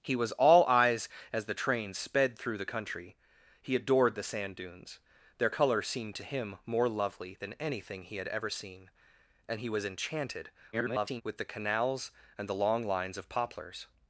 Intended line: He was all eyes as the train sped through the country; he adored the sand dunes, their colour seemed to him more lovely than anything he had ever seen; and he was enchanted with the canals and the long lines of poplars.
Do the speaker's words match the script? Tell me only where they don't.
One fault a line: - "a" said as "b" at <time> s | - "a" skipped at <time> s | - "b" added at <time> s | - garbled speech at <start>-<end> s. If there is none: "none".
- garbled speech at 10.7-11.2 s